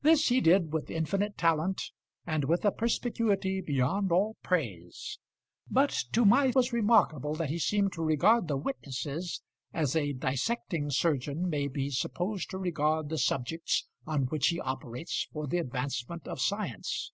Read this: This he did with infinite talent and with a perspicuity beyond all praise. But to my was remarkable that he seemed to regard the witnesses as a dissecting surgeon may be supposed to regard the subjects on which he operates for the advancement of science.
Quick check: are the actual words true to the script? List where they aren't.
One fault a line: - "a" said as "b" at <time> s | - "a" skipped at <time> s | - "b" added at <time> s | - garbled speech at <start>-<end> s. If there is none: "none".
none